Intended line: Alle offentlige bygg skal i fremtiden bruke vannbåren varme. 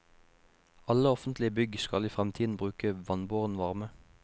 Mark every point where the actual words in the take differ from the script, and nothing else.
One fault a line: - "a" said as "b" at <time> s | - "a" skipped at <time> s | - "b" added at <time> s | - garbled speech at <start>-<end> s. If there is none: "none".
none